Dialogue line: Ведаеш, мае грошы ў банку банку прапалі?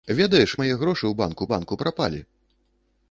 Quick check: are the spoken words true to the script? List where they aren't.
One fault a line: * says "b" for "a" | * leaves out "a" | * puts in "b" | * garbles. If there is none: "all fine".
all fine